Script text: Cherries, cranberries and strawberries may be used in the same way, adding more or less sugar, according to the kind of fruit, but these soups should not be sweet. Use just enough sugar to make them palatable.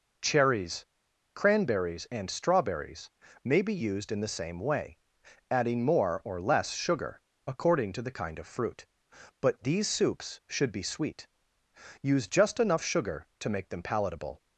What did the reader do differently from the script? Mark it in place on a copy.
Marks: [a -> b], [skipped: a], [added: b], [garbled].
Cherries, cranberries and strawberries may be used in the same way, adding more or less sugar, according to the kind of fruit, but these soups should [skipped: not] be sweet. Use just enough sugar to make them palatable.